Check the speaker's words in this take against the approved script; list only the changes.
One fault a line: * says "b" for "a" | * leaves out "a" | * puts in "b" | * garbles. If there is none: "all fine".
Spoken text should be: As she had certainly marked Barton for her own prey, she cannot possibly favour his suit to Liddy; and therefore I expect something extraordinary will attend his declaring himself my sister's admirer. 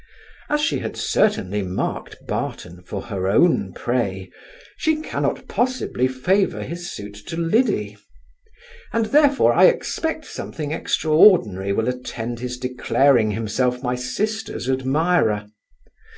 all fine